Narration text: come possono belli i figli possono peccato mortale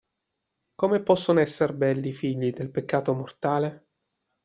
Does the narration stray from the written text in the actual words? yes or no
yes